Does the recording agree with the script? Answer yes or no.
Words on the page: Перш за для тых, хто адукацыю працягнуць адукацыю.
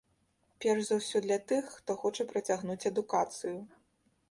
no